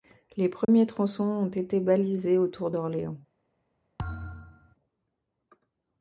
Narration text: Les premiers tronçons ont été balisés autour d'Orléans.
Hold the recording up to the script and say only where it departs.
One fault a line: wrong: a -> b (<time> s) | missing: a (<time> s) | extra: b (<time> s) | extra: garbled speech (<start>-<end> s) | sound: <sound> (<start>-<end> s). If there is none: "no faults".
sound: dropout (0.6-0.7 s)
sound: thud (4.0-4.8 s)